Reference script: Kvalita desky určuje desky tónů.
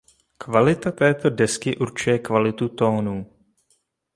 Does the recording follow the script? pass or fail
fail